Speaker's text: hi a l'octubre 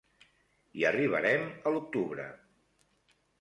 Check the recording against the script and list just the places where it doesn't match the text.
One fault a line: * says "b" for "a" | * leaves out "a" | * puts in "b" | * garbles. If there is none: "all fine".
* puts in "arribarem"